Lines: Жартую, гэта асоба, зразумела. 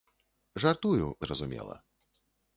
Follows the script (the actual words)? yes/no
no